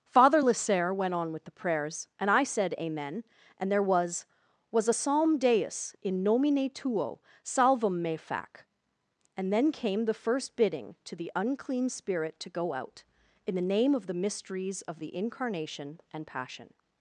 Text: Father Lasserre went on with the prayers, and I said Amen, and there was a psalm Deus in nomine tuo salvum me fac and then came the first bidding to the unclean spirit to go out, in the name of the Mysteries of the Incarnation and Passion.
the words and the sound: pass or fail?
fail